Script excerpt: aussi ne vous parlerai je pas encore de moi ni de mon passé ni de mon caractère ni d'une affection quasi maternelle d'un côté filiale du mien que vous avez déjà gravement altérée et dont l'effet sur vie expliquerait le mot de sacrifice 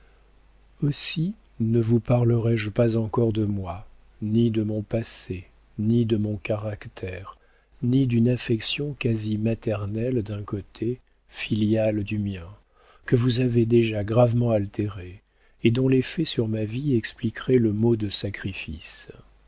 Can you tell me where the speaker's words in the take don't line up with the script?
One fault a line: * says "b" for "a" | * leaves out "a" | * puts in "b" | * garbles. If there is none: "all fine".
* puts in "ma"